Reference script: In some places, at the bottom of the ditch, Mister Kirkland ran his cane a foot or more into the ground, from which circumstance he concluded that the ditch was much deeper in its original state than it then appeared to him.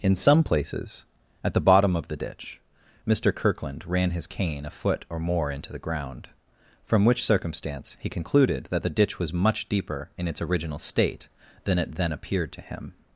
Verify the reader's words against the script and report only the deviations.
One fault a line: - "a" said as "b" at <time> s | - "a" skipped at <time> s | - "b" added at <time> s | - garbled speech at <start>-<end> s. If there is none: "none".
none